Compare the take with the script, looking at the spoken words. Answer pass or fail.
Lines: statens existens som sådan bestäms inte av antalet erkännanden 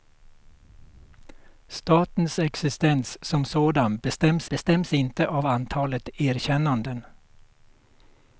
fail